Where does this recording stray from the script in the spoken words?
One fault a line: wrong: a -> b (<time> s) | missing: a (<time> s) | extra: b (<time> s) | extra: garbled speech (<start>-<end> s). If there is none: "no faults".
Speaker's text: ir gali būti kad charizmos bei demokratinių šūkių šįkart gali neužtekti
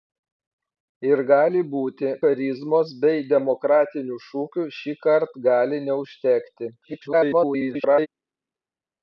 missing: kad (2.1 s)
extra: garbled speech (6.8-8.1 s)